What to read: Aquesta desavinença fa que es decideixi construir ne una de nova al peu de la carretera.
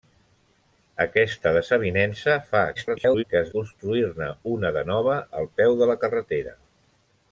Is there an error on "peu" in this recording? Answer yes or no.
no